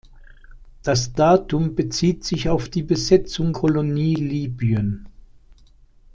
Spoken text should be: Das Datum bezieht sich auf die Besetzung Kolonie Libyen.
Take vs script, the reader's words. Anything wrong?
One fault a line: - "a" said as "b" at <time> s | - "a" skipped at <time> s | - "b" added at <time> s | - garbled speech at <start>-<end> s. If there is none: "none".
none